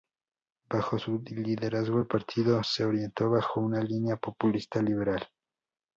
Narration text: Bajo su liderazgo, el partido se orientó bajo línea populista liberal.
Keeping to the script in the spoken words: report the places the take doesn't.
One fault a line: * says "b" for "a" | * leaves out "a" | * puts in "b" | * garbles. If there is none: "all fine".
* puts in "una"